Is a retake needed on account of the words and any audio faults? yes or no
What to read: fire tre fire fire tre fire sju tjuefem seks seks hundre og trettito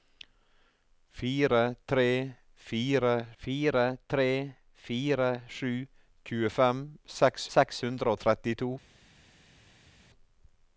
no